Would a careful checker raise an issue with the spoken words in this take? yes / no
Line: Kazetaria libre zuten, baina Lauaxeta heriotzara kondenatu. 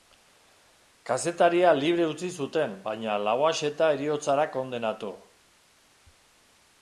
yes